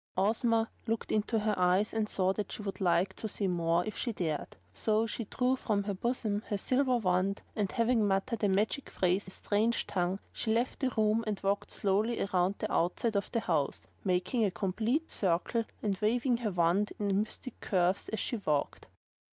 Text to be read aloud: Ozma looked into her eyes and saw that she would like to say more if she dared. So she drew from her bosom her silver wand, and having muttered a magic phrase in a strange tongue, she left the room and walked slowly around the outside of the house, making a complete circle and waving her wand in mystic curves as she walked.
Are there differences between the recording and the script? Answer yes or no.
yes